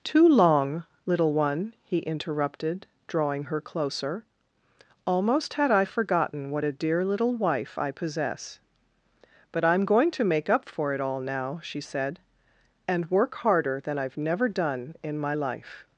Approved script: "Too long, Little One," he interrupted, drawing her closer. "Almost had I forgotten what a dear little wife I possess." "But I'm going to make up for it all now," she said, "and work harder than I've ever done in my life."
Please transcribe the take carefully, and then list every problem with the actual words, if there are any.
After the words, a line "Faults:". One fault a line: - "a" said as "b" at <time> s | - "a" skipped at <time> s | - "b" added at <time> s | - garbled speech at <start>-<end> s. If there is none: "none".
"Too long, Little One," he interrupted, drawing her closer. "Almost had I forgotten what a dear little wife I possess." "But I'm going to make up for it all now," she said, "and work harder than I've never done in my life."
Faults:
- "ever" said as "never" at 14.2 s